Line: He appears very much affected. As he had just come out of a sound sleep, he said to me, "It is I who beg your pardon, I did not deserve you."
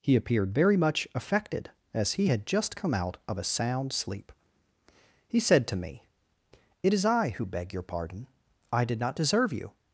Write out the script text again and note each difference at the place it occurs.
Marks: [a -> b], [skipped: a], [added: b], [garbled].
He [appears -> appeared] very much affected. As he had just come out of a sound sleep, he said to me, "It is I who beg your pardon, I did not deserve you."